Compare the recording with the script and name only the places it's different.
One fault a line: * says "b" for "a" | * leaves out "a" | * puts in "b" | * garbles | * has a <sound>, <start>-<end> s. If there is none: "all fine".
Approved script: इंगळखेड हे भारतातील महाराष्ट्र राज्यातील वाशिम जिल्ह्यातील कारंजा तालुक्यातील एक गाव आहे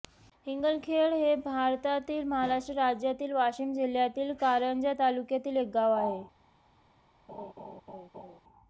* has a laugh, 7.3-8.4 s